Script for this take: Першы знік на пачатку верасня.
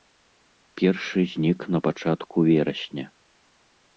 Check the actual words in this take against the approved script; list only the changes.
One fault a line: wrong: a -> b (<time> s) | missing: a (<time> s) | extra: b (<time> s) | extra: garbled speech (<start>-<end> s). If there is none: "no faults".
no faults